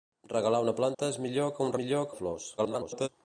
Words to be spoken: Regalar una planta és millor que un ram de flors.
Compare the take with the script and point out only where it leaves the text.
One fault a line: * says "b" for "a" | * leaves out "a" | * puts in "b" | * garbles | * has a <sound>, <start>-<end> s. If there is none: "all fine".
* has a dropout, 0.9-1.0 s
* says "millor" for "ram"
* garbles